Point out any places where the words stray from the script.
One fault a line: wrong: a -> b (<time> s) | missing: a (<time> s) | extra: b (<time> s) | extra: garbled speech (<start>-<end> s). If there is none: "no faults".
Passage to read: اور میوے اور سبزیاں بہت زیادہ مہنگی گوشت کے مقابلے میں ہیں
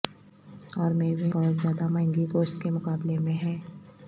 missing: اور سبزیاں (1.3 s)